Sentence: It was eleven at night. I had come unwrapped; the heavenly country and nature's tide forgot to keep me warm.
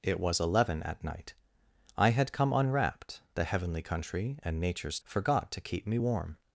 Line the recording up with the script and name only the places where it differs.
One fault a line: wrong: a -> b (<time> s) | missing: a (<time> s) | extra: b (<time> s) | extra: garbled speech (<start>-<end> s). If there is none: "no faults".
missing: tide (5.0 s)